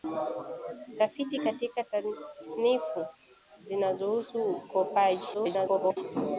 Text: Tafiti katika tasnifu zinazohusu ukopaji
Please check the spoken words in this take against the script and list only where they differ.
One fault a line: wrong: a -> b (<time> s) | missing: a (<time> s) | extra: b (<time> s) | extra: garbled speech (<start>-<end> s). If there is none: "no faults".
extra: garbled speech (5.3-6.0 s)